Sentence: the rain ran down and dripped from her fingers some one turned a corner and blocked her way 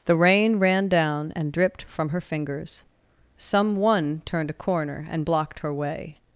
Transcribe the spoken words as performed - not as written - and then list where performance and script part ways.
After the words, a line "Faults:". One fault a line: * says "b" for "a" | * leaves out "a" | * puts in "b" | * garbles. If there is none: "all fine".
the rain ran down and dripped from her fingers some one turned a corner and blocked her way
Faults:
all fine